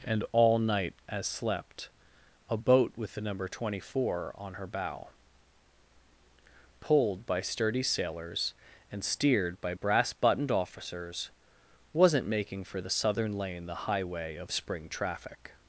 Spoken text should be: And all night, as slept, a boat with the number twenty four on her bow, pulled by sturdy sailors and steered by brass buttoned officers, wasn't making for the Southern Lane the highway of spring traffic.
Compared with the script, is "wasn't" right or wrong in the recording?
right